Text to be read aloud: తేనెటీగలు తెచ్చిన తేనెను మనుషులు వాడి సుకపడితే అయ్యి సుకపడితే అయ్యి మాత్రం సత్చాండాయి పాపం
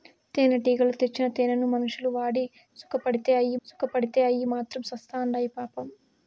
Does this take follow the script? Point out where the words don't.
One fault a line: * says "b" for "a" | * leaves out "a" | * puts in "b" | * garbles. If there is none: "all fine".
all fine